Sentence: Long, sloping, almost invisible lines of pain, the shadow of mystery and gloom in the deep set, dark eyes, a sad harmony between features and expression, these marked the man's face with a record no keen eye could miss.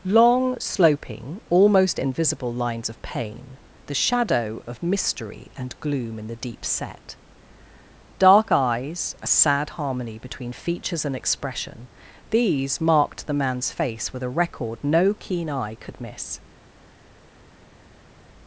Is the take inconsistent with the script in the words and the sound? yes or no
no